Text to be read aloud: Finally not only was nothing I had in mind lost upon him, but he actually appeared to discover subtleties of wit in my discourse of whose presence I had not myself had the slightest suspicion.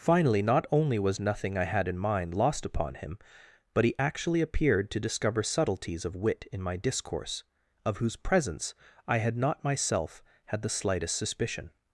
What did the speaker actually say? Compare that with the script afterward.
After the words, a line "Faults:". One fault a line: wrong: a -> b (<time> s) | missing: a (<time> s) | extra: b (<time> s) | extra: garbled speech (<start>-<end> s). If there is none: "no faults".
Finally not only was nothing I had in mind lost upon him, but he actually appeared to discover subtleties of wit in my discourse of whose presence I had not myself had the slightest suspicion.
Faults:
no faults